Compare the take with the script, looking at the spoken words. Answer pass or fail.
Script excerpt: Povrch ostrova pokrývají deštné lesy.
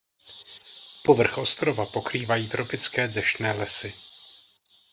fail